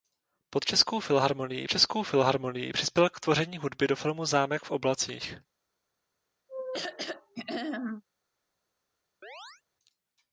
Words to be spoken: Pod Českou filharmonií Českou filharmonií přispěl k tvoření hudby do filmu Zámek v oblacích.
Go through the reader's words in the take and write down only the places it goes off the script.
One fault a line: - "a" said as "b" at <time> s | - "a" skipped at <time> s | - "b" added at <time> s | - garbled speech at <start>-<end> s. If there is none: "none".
none